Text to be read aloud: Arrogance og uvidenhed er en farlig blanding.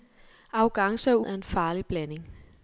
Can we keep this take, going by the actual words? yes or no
no